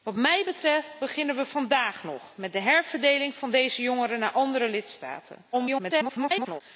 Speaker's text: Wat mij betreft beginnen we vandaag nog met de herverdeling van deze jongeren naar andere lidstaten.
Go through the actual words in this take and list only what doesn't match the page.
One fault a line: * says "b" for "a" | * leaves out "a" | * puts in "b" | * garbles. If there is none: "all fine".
* garbles